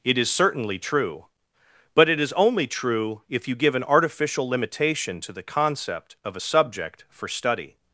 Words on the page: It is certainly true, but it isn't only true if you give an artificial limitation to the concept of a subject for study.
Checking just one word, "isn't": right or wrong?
wrong